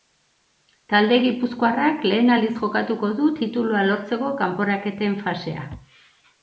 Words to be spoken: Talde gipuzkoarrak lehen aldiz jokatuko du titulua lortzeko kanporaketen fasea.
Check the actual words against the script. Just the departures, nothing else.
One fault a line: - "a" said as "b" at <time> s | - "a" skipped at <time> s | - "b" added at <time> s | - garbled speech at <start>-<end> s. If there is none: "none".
none